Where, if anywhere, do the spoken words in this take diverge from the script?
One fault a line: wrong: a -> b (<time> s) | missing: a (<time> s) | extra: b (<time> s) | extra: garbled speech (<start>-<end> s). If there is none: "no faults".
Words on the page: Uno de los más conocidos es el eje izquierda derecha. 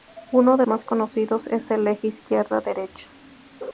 missing: los (0.7 s)